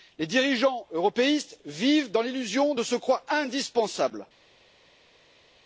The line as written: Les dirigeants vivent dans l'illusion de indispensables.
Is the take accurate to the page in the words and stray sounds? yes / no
no